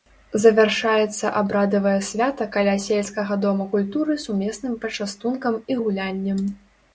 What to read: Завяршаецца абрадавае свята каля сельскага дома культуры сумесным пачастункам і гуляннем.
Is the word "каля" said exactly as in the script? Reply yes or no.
yes